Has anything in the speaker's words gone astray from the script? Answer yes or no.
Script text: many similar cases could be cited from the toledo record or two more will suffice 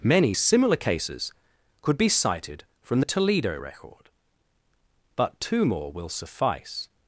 yes